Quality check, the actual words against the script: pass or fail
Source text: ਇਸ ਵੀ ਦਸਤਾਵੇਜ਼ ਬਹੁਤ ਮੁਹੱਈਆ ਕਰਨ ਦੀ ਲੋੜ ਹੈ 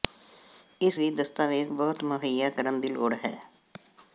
pass